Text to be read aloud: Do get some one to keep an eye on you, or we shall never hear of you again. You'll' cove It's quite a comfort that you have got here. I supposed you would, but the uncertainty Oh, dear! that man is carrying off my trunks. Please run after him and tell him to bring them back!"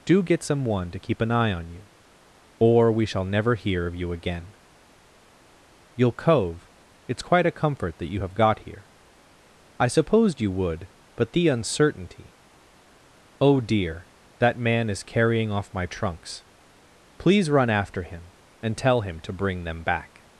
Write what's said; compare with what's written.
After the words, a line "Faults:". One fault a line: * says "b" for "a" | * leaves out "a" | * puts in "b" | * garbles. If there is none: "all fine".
Do get some one to keep an eye on you, or we shall never hear of you again. You'll' cove It's quite a comfort that you have got here. I supposed you would, but the uncertainty Oh, dear! that man is carrying off my trunks. Please run after him and tell him to bring them back!"
Faults:
all fine